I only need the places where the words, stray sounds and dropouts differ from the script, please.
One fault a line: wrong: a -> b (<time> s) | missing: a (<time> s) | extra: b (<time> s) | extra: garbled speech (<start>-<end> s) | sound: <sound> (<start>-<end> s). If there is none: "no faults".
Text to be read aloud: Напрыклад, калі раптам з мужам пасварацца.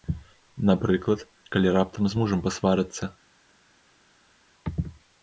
no faults